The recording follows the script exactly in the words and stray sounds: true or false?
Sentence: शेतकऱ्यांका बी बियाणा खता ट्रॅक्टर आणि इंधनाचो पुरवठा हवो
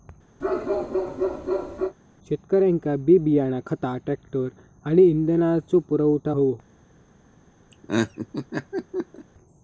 false